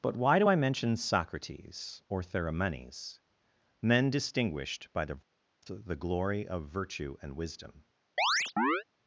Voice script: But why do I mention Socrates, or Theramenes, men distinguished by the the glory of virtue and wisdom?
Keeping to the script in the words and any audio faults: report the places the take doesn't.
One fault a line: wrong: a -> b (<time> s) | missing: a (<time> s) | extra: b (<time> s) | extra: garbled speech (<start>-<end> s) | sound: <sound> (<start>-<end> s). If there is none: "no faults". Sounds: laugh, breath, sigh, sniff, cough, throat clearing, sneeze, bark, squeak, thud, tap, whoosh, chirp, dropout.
sound: chirp (8.2-8.8 s)